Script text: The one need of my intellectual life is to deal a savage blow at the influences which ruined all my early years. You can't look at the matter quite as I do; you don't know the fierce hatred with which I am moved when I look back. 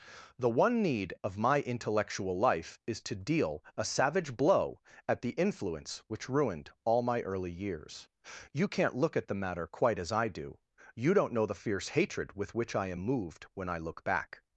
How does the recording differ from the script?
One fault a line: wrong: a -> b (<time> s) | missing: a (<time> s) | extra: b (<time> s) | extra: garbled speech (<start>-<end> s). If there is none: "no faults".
wrong: influences -> influence (5.4 s)